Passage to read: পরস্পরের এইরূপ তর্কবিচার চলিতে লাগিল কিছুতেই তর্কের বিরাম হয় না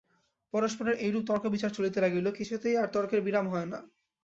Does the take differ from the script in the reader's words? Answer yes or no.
yes